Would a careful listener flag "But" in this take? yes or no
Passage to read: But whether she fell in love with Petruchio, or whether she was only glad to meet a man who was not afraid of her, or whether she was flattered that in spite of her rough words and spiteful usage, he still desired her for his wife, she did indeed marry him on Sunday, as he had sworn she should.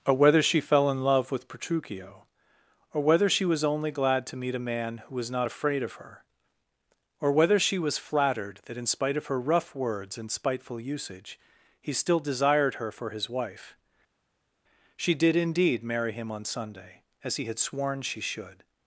yes